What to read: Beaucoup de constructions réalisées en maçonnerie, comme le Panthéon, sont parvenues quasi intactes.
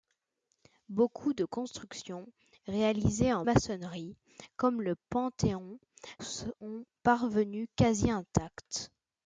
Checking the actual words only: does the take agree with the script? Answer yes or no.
yes